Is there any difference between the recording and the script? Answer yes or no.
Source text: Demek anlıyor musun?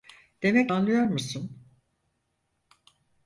no